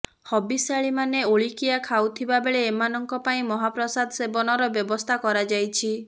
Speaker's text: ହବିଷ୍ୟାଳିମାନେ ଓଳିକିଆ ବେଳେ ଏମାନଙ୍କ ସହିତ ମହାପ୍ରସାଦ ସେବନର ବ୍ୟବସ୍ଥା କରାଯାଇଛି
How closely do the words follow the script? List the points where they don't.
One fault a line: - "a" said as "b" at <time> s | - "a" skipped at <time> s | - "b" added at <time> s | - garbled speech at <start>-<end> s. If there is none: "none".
- "ଖାଉଥିବା" added at 1.8 s
- "ସହିତ" said as "ପାଇଁ" at 3.3 s